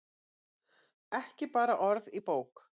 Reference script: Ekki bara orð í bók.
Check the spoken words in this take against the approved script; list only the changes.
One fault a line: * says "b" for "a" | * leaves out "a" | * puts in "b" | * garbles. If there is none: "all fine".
all fine